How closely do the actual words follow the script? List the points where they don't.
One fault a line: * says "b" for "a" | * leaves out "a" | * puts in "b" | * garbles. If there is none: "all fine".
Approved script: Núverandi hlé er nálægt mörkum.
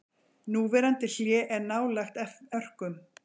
all fine